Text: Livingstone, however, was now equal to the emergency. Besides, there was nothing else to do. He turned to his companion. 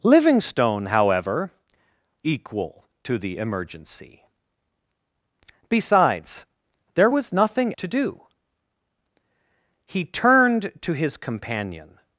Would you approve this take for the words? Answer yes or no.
no